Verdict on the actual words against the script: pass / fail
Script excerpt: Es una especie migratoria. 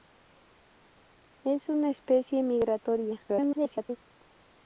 fail